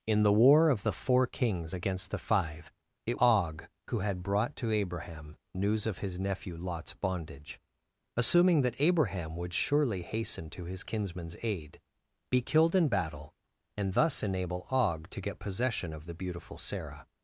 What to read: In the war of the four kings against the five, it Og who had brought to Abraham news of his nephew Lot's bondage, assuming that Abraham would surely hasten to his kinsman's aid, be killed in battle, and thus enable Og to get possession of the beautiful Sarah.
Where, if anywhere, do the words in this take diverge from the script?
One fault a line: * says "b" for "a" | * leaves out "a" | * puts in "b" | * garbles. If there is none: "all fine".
all fine